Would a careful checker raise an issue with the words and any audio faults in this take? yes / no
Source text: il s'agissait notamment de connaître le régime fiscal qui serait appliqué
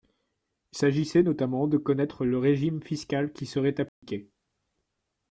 yes